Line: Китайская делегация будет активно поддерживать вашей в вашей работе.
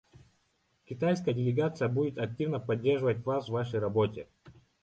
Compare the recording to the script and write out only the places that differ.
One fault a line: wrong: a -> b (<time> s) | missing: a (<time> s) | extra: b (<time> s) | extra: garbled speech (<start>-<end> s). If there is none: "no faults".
wrong: вашей -> вас (3.3 s)